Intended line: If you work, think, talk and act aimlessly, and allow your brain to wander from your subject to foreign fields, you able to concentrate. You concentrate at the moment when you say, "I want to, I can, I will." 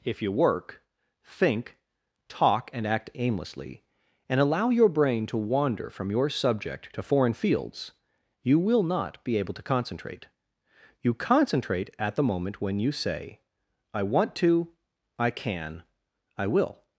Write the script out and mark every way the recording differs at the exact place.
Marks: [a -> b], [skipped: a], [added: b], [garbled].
If you work, think, talk and act aimlessly, and allow your brain to wander from your subject to foreign fields, you [added: will not be] able to concentrate. You concentrate at the moment when you say, "I want to, I can, I will."